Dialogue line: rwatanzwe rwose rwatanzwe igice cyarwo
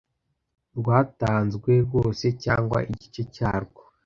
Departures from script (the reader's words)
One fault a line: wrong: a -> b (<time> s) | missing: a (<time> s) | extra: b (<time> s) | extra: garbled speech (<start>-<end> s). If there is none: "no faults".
wrong: rwatanzwe -> cyangwa (2.4 s)